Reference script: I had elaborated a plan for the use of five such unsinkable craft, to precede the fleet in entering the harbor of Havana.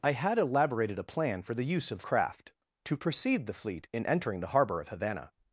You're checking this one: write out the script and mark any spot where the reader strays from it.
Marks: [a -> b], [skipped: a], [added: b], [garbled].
I had elaborated a plan for the use of [skipped: five such unsinkable] craft, to precede the fleet in entering the harbor of Havana.